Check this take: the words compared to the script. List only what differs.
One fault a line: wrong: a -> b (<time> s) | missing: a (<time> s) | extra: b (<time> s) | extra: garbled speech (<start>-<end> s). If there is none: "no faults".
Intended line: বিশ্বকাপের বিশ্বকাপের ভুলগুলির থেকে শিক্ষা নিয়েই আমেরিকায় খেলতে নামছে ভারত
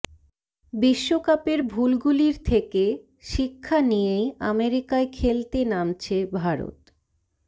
missing: বিশ্বকাপের (1.6 s)